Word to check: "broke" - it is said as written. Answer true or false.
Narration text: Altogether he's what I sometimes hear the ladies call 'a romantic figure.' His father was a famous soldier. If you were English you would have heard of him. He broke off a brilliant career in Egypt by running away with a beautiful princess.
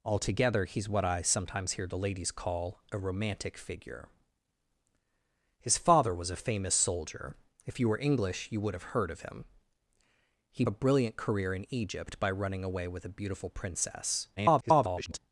false